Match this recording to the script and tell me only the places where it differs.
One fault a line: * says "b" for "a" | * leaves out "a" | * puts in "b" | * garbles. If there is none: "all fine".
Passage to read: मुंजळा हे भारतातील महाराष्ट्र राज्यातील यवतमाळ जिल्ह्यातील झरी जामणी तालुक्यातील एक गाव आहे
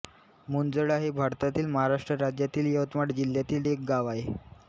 * leaves out "झरी जामणी तालुक्यातील"